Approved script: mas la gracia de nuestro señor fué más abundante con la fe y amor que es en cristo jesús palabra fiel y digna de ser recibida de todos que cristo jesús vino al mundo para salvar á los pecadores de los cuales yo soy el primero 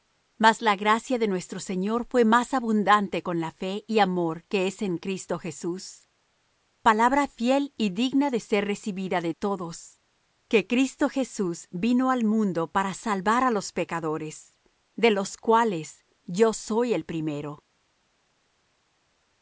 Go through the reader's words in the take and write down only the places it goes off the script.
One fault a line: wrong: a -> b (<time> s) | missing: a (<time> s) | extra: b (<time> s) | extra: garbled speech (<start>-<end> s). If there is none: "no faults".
no faults